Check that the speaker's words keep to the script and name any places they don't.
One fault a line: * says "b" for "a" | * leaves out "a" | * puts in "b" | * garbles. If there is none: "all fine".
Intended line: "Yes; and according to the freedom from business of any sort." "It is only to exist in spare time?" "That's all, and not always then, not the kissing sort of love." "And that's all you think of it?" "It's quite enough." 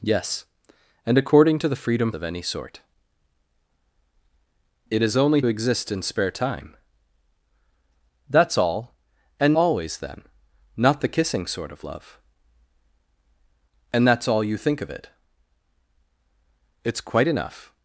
* leaves out "from business"
* leaves out "to"
* leaves out "not"